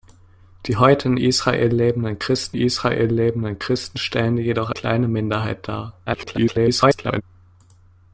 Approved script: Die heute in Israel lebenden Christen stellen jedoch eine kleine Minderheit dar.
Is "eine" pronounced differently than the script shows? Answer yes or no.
yes